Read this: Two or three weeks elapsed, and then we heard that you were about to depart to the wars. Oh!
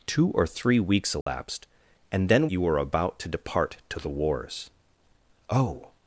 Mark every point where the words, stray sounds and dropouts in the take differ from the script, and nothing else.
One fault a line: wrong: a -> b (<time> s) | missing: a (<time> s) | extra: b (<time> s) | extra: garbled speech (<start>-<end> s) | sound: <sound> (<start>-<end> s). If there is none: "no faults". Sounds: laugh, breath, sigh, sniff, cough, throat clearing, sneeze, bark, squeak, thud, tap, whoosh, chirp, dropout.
sound: dropout (1.2-1.3 s)
missing: we heard that (2.5 s)